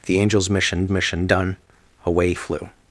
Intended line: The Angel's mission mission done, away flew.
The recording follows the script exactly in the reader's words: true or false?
true